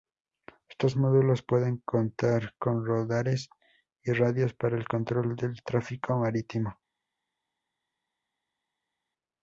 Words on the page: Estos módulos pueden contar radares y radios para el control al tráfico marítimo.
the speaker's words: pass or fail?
fail